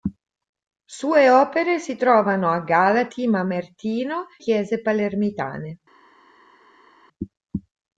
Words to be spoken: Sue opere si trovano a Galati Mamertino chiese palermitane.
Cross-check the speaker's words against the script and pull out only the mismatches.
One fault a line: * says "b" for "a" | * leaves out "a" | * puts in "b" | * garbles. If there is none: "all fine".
all fine